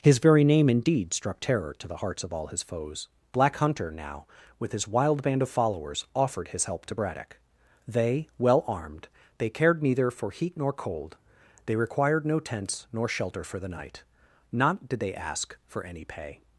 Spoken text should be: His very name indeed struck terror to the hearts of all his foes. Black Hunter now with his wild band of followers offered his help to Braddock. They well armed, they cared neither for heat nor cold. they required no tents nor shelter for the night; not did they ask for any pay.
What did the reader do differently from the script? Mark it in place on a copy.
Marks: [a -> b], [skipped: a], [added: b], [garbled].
His very name indeed struck terror to the hearts of all his foes. Black Hunter now with his wild band of followers offered his help to Braddock. They well armed, they cared neither for heat nor cold. they required no tents nor shelter for the night; not did they ask for any pay.